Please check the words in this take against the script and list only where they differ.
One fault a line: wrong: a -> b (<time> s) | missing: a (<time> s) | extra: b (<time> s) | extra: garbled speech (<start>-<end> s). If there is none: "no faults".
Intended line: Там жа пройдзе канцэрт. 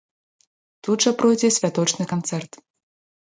wrong: Там -> Тут (0.9 s)
extra: святочны (1.6 s)